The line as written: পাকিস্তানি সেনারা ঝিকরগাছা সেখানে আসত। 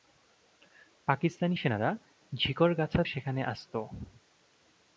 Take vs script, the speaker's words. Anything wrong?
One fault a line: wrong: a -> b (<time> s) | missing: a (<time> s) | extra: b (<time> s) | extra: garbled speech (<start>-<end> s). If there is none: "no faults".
no faults